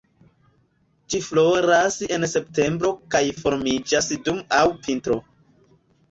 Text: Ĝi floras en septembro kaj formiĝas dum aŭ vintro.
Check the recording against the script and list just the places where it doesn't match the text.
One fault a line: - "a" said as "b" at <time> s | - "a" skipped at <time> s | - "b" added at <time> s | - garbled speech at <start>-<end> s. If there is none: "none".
none